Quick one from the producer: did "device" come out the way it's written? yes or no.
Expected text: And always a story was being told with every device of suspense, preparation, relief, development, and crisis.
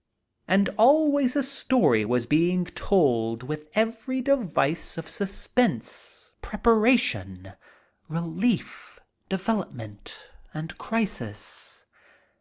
yes